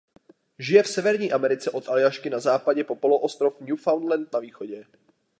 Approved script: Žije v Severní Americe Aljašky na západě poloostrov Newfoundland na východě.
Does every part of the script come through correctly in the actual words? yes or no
no